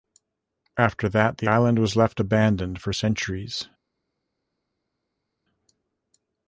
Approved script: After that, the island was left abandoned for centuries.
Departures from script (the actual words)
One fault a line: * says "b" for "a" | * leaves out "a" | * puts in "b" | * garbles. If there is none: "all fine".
all fine